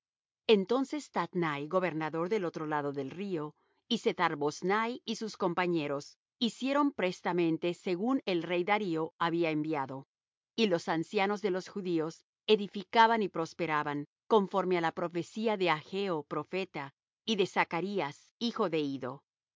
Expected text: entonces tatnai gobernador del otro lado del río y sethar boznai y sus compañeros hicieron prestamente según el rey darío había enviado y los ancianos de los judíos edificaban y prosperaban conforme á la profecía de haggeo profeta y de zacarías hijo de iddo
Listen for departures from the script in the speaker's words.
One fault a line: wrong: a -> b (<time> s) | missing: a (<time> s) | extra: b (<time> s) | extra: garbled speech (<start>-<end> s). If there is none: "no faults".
no faults